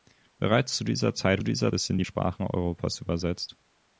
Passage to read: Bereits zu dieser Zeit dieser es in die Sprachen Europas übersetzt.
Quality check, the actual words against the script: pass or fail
pass